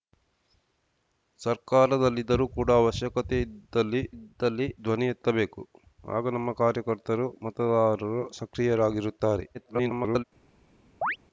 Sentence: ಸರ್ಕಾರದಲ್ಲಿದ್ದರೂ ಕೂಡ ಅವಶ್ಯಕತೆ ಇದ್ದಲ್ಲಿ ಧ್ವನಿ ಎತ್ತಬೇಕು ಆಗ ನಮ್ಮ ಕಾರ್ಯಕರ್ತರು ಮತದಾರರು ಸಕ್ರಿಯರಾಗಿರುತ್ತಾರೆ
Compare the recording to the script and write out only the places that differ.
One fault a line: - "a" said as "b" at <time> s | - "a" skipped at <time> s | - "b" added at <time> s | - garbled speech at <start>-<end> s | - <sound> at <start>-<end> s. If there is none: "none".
- "ಇದ್ದಲ್ಲಿ" added at 4.1 s
- garbled speech at 9.5-10.2 s
- chirp at 11.0-11.2 s